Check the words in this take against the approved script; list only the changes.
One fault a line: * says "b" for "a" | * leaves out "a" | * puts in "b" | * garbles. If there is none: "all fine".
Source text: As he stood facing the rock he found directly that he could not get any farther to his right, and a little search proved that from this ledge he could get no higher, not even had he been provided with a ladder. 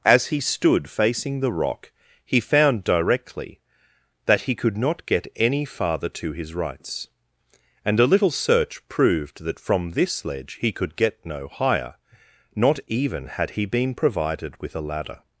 * says "rights" for "right"